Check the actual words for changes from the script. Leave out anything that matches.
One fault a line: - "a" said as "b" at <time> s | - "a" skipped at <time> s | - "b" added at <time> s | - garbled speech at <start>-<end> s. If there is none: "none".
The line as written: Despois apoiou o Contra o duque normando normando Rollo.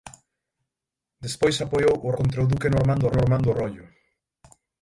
none